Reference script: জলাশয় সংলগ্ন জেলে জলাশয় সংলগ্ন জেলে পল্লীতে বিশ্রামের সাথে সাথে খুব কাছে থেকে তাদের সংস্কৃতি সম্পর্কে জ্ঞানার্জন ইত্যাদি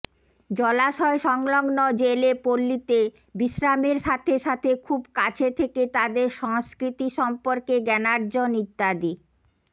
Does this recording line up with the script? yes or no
no